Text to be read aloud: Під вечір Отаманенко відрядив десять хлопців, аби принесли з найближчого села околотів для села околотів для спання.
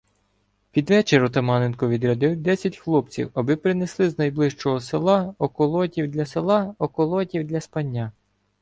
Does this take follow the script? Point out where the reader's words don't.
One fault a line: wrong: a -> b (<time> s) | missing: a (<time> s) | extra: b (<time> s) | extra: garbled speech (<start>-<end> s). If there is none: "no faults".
no faults